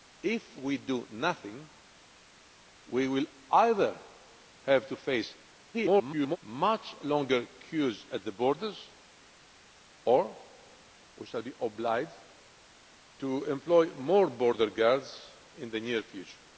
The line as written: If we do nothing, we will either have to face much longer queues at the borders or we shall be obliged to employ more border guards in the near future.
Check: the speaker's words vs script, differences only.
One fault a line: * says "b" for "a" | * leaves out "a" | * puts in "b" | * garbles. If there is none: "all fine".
* garbles